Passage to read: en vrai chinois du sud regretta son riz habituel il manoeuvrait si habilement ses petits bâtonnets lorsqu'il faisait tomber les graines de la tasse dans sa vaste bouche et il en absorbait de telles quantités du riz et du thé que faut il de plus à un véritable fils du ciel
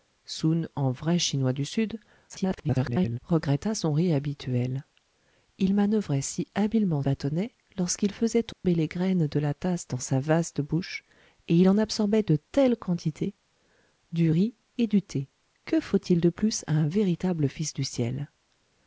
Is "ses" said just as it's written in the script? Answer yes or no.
no